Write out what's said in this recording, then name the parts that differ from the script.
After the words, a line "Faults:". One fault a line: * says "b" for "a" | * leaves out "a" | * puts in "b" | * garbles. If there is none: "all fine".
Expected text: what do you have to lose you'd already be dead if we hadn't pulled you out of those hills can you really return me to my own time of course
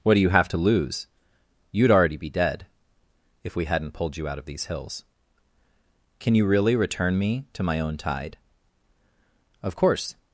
what do you have to lose you'd already be dead if we hadn't pulled you out of these hills can you really return me to my own tide of course
Faults:
* says "these" for "those"
* says "tide" for "time"